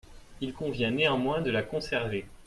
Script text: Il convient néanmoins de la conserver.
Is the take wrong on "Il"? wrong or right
right